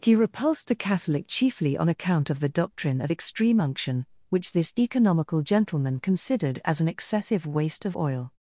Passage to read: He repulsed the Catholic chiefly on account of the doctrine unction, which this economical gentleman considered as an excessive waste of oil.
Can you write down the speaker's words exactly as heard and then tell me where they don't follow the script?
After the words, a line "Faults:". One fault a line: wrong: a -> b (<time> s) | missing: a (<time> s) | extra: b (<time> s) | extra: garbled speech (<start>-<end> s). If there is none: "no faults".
He repulsed the Catholic chiefly on account of the doctrine of extreme unction, which this economical gentleman considered as an excessive waste of oil.
Faults:
extra: of extreme (3.0 s)